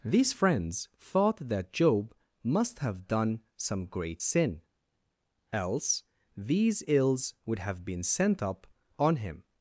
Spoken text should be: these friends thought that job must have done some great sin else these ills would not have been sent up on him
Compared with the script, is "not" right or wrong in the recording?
wrong